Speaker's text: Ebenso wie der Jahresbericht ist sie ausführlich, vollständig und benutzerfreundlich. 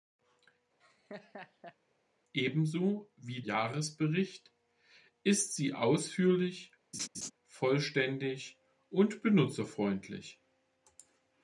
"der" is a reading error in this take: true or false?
true